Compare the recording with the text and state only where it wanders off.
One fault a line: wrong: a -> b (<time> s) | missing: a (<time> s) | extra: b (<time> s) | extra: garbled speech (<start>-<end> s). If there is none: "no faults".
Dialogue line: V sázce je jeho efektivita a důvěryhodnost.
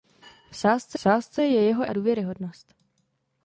extra: sázce (1.0 s)
missing: efektivita (1.9 s)